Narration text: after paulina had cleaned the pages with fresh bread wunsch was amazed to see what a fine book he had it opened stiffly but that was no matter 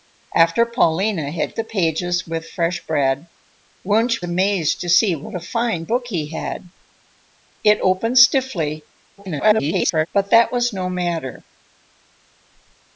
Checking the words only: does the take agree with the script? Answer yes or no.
no